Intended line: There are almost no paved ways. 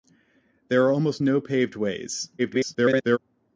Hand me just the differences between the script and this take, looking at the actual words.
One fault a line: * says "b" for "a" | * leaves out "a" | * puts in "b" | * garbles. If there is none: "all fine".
* garbles